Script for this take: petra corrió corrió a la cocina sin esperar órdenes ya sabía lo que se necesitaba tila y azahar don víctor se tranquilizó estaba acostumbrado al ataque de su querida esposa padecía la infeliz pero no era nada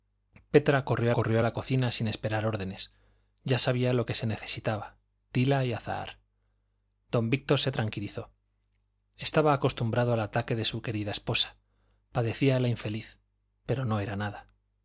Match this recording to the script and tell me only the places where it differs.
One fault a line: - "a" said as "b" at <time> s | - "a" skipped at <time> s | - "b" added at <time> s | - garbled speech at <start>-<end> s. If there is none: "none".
none